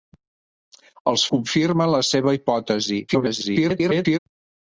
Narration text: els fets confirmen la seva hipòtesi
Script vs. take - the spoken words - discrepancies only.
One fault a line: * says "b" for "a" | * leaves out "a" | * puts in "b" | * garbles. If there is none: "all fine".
* leaves out "fets"
* garbles